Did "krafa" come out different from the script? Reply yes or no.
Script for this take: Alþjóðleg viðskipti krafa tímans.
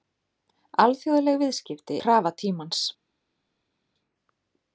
no